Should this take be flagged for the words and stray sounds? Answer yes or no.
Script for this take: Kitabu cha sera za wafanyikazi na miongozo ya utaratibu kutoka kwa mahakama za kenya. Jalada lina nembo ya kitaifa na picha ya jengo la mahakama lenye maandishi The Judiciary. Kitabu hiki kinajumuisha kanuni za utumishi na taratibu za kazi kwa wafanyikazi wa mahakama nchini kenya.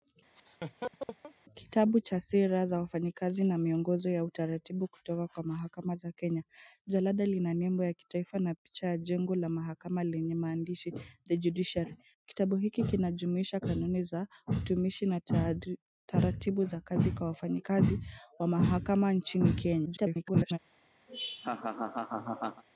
yes